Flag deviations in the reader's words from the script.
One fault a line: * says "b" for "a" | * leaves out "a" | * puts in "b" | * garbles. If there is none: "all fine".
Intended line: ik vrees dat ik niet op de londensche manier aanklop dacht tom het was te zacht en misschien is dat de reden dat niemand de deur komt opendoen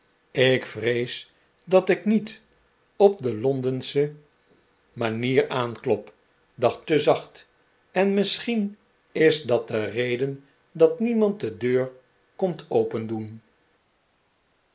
* leaves out "tom het was"